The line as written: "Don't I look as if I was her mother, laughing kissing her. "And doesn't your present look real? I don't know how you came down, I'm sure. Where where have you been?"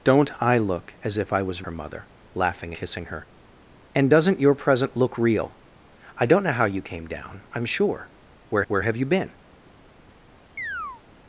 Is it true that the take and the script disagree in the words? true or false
false